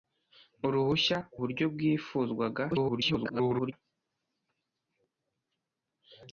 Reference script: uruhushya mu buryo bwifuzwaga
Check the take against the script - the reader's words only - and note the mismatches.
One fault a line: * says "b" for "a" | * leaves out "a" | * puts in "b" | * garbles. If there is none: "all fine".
* leaves out "mu"
* garbles